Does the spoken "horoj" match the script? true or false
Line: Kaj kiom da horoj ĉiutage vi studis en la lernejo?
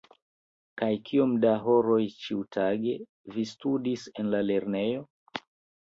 true